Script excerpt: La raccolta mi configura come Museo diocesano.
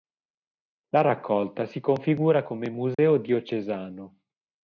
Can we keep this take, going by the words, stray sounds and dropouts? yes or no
no